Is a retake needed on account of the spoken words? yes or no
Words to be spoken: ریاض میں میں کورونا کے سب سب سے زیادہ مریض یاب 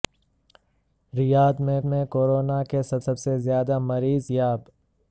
no